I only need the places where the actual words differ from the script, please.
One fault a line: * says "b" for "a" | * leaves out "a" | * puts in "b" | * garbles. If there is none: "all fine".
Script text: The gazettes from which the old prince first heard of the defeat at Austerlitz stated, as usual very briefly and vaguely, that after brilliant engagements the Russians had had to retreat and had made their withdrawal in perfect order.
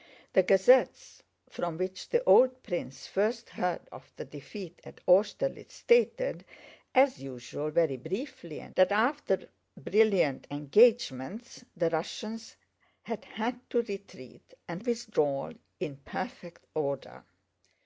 * leaves out "vaguely"
* leaves out "had made their"